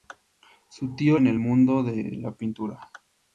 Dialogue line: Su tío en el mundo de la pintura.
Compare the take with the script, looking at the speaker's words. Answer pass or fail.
pass